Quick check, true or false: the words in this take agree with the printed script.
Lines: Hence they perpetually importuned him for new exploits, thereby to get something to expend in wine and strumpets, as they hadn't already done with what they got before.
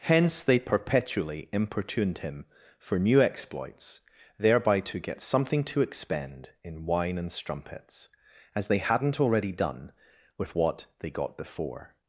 true